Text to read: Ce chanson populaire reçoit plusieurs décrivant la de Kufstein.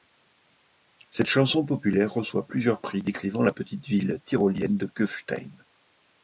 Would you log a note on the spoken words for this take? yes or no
yes